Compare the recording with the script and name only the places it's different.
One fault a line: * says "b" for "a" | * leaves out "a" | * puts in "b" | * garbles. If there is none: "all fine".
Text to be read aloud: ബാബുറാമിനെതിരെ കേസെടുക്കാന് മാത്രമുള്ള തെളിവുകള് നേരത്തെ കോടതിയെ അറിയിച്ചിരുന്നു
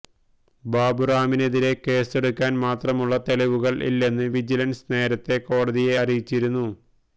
* puts in "ഇല്ലെന്ന് വിജിലന്സ്"